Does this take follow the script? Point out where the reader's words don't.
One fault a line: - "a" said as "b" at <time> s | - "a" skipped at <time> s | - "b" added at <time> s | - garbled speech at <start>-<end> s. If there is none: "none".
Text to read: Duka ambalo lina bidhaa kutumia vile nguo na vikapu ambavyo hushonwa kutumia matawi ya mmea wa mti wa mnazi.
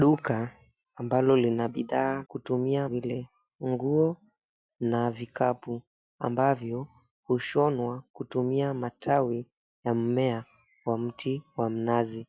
none